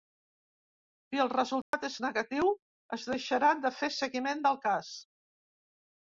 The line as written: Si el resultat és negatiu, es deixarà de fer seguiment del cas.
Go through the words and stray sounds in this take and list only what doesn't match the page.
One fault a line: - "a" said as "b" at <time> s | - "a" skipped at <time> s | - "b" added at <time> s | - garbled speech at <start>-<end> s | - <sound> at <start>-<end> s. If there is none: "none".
- dropout at 1.6-1.7 s